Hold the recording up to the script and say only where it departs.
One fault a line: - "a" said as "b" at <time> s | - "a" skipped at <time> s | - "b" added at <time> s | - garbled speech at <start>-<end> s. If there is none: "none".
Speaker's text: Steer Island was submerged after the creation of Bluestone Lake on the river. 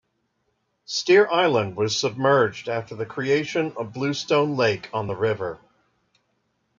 none